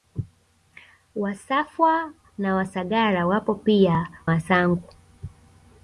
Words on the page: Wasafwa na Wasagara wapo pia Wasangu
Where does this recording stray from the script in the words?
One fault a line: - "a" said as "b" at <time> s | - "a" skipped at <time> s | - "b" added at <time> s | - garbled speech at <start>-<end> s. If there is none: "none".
none